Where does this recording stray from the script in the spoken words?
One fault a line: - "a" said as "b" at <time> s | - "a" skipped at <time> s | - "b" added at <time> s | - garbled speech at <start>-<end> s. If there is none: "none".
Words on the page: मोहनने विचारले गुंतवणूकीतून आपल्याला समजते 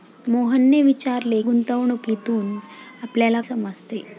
none